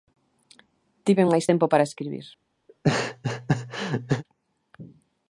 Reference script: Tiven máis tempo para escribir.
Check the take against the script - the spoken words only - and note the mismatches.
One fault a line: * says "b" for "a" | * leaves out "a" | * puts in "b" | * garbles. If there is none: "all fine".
all fine